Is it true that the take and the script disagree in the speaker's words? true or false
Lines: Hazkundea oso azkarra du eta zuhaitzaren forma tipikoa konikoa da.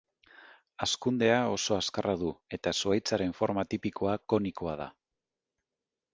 false